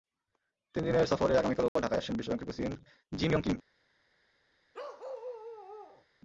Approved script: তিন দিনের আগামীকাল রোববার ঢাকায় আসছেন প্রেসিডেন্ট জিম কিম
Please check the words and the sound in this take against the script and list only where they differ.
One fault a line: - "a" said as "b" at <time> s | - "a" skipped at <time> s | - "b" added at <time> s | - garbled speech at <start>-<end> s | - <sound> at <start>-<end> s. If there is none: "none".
- "সফরে" added at 1.1 s
- dropout at 1.7-1.8 s
- "বিশ্বব্যাংকের" added at 2.2 s
- "ইয়ং" added at 3.3 s
- bark at 4.7-6.1 s